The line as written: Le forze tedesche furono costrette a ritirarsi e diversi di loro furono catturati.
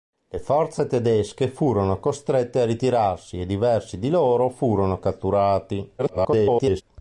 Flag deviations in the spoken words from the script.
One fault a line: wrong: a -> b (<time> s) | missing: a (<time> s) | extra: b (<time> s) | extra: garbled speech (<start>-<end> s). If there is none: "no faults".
extra: garbled speech (6.0-6.8 s)